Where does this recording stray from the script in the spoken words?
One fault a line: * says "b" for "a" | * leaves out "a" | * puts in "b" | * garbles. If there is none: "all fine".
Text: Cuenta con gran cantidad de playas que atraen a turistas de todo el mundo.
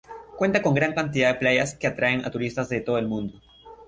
all fine